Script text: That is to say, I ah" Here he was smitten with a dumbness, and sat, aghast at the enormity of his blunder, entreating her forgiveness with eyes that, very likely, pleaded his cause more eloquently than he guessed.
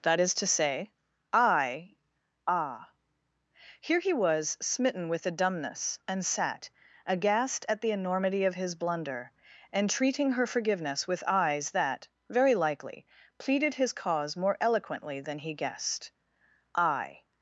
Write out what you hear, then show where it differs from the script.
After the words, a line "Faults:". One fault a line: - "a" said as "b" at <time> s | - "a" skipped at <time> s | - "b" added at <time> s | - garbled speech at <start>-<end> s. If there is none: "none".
That is to say, I ah" Here he was smitten with a dumbness, and sat, aghast at the enormity of his blunder, entreating her forgiveness with eyes that, very likely, pleaded his cause more eloquently than he guessed. "I
Faults:
- "I" added at 16.8 s